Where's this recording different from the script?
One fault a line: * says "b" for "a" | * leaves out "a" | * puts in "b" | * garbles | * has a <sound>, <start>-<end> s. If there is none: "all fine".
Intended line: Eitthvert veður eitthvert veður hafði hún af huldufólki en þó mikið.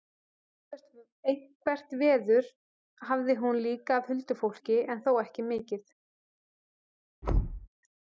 * leaves out "eitthvert veður"
* puts in "líka"
* puts in "ekki"
* has a thud, 7.2-7.7 s